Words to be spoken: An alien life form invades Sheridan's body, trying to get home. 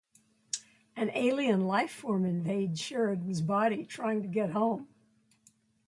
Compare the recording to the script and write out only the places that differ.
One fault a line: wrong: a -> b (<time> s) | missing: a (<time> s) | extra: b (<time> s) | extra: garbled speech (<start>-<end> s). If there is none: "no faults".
no faults